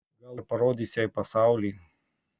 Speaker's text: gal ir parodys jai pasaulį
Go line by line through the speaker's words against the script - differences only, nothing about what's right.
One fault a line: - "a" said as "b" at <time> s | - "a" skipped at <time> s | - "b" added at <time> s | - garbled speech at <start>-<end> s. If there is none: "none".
none